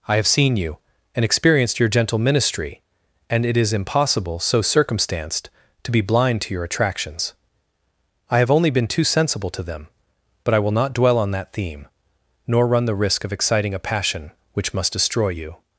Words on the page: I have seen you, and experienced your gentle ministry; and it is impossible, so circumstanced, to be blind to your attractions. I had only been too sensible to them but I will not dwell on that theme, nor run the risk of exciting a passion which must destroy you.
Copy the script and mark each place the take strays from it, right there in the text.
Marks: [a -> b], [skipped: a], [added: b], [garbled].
I have seen you, and experienced your gentle ministry; and it is impossible, so circumstanced, to be blind to your attractions. I [had -> have] only been too sensible to them but I will not dwell on that theme, nor run the risk of exciting a passion which must destroy you.